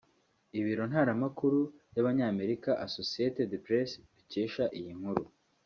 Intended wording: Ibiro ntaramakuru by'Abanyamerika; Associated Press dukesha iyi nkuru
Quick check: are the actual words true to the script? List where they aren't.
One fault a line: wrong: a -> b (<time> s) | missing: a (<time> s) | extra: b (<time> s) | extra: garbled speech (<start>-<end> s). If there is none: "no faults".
no faults